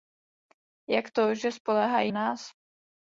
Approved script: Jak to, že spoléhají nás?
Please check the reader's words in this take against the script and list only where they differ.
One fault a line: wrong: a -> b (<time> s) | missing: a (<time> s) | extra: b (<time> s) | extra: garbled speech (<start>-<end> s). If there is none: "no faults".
no faults